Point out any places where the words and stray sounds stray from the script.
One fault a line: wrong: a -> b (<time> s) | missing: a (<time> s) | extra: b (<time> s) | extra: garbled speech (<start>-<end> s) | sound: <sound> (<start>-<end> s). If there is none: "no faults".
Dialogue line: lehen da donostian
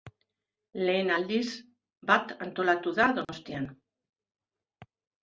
extra: aldiz bat antolatu (1.2 s)
sound: dropout (3.2-3.3 s)